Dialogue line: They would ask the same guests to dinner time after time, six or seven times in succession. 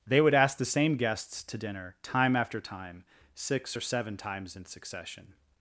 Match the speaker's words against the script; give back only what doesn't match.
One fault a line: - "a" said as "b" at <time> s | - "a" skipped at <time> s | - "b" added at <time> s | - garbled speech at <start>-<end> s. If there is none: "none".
none